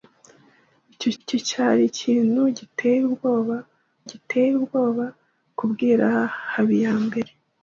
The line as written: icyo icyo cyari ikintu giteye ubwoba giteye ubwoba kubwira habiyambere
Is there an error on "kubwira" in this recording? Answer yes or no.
no